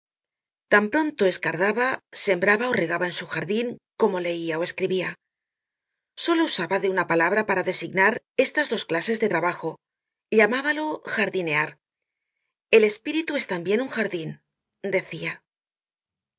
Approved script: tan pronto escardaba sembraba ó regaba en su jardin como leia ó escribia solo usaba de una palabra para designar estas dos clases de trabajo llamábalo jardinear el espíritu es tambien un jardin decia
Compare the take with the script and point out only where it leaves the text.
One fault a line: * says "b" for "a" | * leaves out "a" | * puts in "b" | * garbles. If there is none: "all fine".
all fine